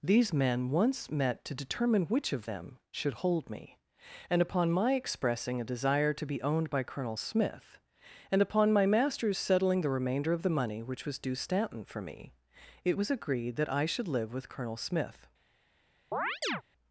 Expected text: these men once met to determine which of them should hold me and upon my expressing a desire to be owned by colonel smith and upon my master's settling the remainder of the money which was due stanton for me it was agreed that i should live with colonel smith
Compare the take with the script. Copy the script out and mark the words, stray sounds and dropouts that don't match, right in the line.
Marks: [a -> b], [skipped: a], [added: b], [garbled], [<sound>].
these men once met to determine which of them should hold me and upon my expressing a desire to be owned by colonel smith and upon my master's settling the remainder of the money which was due stanton for me it was agreed that i should live with colonel smith [chirp]